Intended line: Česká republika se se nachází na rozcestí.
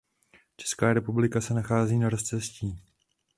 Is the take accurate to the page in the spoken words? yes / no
no